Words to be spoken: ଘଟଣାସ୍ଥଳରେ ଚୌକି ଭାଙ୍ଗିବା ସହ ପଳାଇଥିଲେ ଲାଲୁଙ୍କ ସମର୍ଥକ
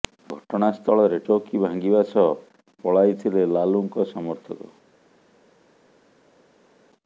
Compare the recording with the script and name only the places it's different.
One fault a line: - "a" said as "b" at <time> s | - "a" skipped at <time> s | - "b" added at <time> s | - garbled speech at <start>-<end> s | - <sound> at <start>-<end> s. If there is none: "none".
none